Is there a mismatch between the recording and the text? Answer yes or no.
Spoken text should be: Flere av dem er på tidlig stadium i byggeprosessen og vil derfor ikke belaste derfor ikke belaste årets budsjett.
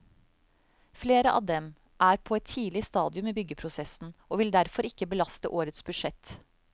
yes